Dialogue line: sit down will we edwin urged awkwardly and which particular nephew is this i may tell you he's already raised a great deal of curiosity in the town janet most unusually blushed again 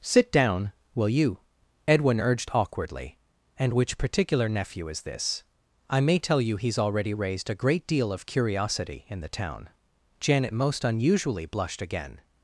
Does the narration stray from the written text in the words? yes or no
yes